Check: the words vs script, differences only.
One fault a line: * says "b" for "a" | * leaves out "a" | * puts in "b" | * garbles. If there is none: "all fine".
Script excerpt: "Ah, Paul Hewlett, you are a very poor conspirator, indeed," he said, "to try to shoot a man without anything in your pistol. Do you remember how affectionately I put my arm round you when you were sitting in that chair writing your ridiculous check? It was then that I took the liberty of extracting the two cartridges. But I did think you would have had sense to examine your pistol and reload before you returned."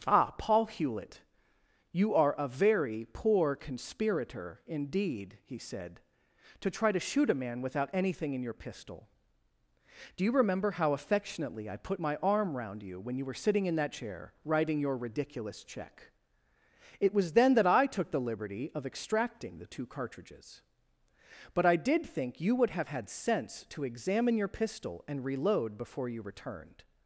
all fine